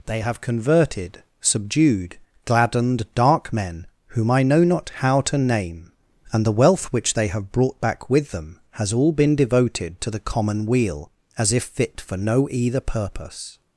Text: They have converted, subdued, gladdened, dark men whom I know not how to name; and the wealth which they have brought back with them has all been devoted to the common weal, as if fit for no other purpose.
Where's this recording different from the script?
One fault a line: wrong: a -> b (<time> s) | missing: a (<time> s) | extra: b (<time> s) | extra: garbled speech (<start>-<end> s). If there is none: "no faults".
wrong: other -> either (12.5 s)